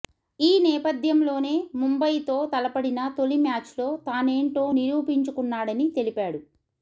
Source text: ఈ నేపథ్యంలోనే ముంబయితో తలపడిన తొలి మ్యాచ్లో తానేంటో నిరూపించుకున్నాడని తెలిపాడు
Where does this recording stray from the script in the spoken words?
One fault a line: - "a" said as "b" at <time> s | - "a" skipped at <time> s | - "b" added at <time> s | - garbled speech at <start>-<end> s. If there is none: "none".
none